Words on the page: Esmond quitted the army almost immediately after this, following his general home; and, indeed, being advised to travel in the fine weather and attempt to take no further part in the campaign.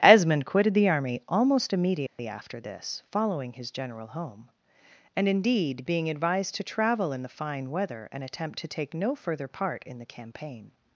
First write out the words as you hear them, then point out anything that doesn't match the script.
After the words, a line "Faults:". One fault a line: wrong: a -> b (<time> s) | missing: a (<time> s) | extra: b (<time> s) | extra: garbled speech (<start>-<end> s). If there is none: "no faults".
Esmond quitted the army almost immediately after this, following his general home; and, indeed, being advised to travel in the fine weather and attempt to take no further part in the campaign.
Faults:
no faults